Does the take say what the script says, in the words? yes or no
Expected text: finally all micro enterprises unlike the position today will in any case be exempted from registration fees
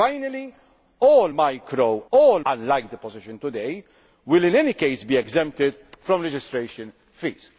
no